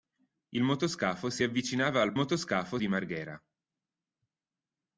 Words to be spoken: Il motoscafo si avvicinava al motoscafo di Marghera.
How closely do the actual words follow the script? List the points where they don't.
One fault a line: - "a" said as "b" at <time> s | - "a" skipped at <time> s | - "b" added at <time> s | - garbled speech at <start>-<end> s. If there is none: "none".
none